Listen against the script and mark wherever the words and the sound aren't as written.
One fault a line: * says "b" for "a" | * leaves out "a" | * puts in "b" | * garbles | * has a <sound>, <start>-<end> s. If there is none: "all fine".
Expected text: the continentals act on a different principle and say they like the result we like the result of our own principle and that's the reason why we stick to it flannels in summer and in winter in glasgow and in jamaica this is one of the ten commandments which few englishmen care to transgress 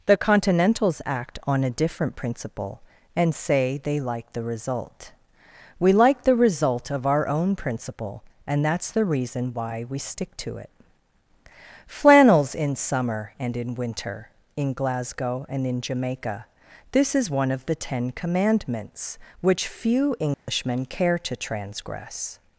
* has a dropout, 20.3-20.5 s